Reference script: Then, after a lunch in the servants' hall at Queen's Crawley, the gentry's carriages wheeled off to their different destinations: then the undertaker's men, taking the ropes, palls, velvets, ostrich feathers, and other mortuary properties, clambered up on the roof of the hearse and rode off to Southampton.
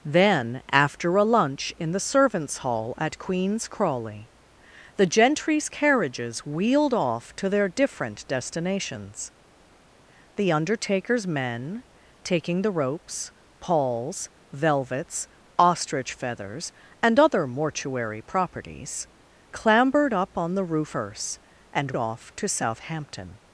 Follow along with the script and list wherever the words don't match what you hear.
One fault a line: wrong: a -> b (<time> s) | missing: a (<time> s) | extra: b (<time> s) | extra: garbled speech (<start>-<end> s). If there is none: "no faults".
missing: then (9.3 s)
missing: of the (20.9 s)
missing: rode (22.0 s)